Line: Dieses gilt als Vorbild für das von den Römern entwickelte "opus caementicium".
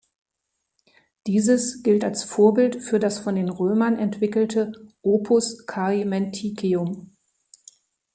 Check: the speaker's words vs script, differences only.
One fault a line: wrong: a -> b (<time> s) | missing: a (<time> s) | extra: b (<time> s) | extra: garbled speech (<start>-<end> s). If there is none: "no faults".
no faults